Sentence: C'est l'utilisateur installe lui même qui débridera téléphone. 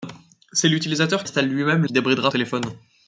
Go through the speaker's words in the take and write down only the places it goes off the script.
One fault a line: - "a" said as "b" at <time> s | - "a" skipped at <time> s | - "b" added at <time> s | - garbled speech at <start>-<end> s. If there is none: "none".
none